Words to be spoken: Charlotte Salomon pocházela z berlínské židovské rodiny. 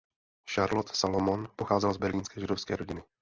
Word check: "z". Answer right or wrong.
right